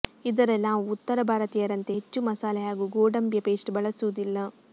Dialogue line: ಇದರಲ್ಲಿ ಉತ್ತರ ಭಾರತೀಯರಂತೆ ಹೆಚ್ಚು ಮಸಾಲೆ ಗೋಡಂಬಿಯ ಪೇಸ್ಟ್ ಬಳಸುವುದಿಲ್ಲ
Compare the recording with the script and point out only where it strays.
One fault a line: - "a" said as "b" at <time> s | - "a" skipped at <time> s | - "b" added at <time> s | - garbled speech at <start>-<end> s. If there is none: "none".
- "ನಾವು" added at 0.6 s
- "ಹಾಗೂ" added at 2.7 s